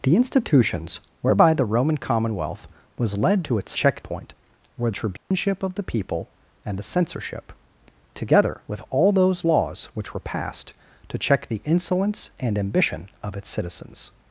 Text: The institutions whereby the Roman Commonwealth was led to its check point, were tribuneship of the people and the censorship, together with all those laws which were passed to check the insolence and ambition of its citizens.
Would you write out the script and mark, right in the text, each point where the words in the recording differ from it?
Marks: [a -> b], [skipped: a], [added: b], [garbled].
The institutions whereby the Roman Commonwealth was led to its check point, were tribuneship of the people and the censorship, together with all those laws which were passed to check the insolence and ambition of its citizens.